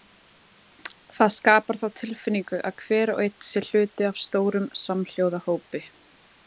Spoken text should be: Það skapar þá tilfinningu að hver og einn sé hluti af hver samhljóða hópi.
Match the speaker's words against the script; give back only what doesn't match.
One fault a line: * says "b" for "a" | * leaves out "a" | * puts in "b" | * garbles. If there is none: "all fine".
* says "stórum" for "hver"